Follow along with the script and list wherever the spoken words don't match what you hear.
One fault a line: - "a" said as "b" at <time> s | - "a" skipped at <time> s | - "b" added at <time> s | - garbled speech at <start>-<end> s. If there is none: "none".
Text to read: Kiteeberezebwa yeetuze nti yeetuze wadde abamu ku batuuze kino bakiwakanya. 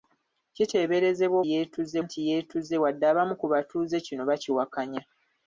none